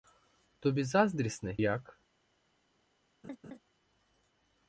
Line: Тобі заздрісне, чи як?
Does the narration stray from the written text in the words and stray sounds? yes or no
yes